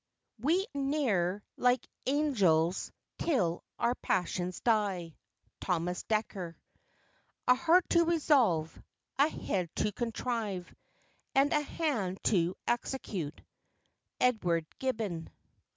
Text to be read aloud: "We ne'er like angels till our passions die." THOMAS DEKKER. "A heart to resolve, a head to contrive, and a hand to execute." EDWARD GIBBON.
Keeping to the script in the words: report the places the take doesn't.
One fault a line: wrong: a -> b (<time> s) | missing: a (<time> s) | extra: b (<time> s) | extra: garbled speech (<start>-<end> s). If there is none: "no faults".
no faults